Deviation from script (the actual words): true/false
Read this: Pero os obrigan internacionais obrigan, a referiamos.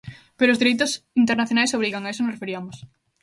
true